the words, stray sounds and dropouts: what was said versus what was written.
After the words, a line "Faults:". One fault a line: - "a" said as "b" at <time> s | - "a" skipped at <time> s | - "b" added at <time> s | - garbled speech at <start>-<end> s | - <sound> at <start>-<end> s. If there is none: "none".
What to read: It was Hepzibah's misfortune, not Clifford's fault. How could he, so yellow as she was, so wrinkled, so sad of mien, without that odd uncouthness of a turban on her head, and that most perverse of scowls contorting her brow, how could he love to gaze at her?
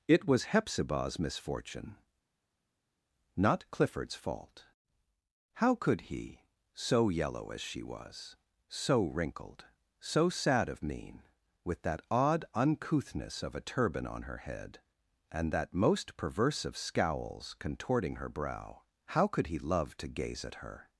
It was Hepzibah's misfortune, not Clifford's fault. How could he, so yellow as she was, so wrinkled, so sad of mien, with that odd uncouthness of a turban on her head, and that most perverse of scowls contorting her brow, how could he love to gaze at her?
Faults:
- "without" said as "with" at 11.7 s